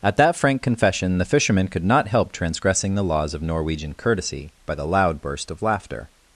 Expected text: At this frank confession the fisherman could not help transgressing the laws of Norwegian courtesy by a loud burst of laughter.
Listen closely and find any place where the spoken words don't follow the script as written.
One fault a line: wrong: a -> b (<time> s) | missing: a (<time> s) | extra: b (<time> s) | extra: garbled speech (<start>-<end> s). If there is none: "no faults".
wrong: this -> that (0.2 s)
wrong: a -> the (4.7 s)